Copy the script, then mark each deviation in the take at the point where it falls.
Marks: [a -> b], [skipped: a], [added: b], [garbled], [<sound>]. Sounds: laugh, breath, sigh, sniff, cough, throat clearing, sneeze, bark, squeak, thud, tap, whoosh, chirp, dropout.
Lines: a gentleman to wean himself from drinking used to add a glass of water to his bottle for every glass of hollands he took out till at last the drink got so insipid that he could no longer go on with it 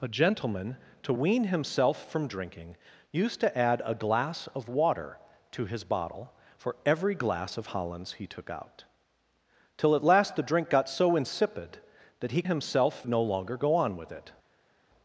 a gentleman to wean himself from drinking used to add a glass of water to his bottle for every glass of hollands he took out till at last the drink got so insipid that he [could -> himself] no longer go on with it